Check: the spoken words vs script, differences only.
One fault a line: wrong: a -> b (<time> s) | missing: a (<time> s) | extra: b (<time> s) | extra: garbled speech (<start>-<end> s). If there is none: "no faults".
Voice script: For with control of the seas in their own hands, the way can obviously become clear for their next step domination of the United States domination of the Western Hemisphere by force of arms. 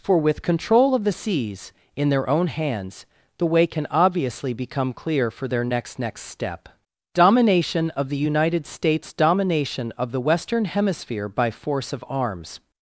extra: next (6.0 s)